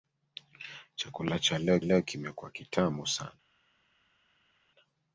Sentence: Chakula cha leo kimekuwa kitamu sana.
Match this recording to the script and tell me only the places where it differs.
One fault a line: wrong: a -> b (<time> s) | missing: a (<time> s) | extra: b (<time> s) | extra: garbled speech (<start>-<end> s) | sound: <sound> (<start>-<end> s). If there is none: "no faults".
extra: leo (1.8 s)